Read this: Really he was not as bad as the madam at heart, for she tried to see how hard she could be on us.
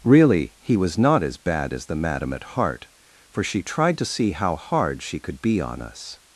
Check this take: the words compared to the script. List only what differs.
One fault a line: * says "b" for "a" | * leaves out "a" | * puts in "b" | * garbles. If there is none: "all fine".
all fine